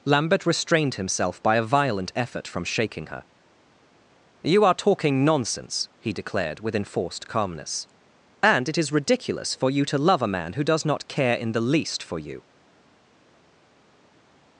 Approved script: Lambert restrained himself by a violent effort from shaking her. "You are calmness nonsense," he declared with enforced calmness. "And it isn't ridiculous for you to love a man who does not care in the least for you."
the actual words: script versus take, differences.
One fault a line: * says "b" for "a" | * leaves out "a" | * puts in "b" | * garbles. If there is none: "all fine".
* says "talking" for "calmness"
* says "is" for "isn't"